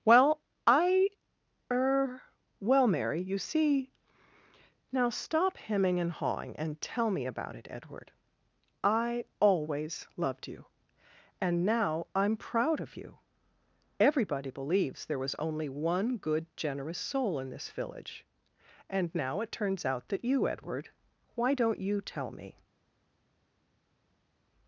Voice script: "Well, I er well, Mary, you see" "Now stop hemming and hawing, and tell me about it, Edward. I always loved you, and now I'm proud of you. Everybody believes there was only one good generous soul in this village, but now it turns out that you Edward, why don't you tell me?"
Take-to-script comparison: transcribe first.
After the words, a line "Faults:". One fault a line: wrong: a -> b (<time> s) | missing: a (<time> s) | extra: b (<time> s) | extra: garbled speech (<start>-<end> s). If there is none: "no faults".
"Well, I er well, Mary, you see" "Now stop hemming and hawing, and tell me about it, Edward. I always loved you, and now I'm proud of you. Everybody believes there was only one good generous soul in this village, and now it turns out that you Edward, why don't you tell me?"
Faults:
wrong: but -> and (18.9 s)